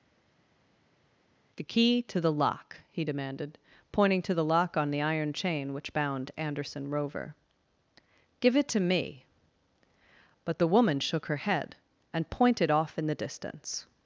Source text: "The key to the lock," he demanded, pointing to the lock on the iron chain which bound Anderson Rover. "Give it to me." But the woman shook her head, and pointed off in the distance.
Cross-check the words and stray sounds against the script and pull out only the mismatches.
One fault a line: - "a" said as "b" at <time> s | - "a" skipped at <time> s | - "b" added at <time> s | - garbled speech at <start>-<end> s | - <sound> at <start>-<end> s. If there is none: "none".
none